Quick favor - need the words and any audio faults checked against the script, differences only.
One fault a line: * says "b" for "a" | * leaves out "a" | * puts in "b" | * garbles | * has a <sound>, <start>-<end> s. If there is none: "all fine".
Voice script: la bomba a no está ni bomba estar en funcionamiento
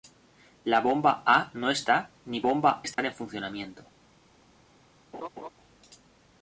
* has a dropout, 2.9-3.0 s
* has a laugh, 5.1-5.5 s